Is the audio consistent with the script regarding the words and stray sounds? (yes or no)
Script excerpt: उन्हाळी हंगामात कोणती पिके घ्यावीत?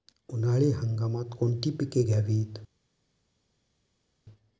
yes